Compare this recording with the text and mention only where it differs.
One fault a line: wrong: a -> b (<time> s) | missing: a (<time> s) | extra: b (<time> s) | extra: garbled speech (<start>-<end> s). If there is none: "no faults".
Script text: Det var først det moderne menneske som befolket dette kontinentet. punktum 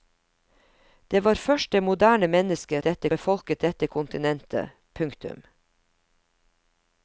wrong: som -> dette (2.8 s)